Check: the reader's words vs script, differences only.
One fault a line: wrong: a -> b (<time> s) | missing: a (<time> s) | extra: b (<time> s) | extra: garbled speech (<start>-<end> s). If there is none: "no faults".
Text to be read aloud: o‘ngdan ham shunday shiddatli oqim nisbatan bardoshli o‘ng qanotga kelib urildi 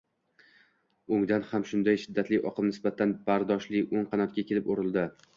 no faults